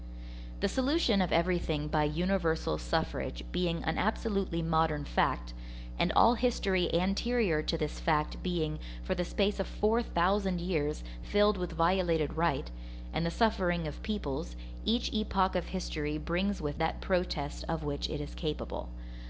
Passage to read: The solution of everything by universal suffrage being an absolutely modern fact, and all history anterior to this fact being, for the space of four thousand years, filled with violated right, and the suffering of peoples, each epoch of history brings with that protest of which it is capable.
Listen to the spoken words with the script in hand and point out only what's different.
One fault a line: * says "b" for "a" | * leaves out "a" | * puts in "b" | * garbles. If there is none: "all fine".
all fine